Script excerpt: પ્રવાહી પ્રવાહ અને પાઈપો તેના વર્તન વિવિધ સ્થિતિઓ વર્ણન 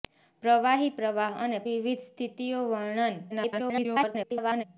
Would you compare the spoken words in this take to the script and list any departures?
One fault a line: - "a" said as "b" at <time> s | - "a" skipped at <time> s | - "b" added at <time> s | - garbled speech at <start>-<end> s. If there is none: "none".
- "પાઈપો તેના વર્તન" skipped at 1.6 s
- garbled speech at 3.3-4.6 s